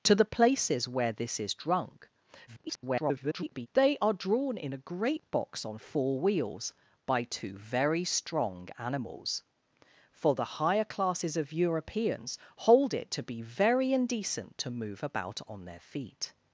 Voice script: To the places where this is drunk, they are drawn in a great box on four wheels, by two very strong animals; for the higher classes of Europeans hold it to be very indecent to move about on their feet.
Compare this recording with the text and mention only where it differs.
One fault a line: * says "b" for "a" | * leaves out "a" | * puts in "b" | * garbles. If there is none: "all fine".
* garbles